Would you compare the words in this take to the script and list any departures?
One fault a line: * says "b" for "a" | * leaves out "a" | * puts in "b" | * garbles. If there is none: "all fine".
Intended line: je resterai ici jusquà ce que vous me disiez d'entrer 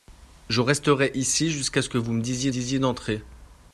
* puts in "disiez"